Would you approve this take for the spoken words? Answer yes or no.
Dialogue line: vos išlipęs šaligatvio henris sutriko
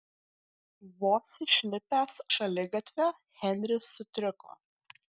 yes